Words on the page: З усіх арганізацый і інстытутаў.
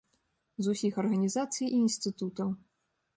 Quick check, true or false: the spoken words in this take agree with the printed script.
true